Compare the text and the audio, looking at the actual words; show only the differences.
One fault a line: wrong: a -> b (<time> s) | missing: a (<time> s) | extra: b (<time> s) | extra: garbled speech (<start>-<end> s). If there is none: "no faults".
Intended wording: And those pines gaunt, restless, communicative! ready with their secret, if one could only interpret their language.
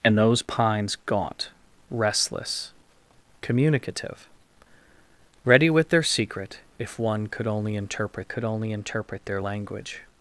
extra: could only interpret (8.3 s)